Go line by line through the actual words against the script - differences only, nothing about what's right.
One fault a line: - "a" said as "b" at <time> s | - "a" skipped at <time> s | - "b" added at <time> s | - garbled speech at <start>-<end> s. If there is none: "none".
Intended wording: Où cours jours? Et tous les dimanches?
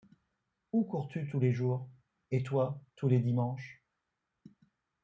- "tu tous les" added at 1.1 s
- "toi" added at 2.4 s